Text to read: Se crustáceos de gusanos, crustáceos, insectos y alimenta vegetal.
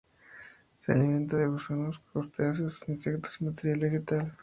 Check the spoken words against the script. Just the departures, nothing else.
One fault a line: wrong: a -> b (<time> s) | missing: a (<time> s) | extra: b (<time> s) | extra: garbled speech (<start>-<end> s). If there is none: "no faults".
wrong: crustáceos -> alimenta (0.9 s)
wrong: alimenta -> materia (3.4 s)